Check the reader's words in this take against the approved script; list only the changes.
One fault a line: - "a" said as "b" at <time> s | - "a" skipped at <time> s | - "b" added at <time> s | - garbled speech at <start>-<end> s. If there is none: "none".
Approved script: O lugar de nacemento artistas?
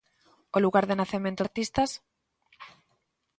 none